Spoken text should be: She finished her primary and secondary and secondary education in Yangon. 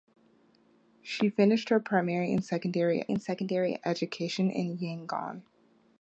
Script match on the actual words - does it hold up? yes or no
yes